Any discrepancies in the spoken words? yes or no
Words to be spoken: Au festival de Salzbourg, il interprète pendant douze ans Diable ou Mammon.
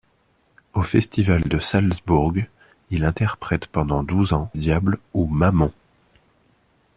no